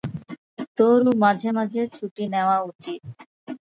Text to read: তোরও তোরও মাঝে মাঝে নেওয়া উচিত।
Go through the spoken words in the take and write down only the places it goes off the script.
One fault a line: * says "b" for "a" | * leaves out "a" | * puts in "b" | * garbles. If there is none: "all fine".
* says "মাঝে" for "তোরও"
* says "ছুটি" for "মাঝে"